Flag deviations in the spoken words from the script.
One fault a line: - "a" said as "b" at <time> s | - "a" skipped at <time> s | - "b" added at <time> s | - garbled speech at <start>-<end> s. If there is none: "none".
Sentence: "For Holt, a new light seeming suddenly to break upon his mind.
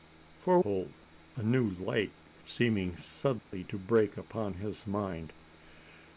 none